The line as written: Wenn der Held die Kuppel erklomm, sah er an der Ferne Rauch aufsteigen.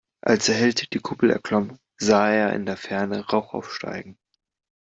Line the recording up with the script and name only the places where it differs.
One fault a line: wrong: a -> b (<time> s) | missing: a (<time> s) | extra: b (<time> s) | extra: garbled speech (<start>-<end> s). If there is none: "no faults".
wrong: Wenn -> Als (0.2 s)
wrong: an -> in (2.5 s)